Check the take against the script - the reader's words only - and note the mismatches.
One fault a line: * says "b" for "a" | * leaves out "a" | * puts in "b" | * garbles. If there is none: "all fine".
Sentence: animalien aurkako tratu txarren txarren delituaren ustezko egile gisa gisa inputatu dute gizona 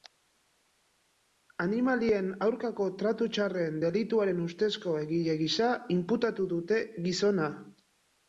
* leaves out "txarren"
* leaves out "gisa"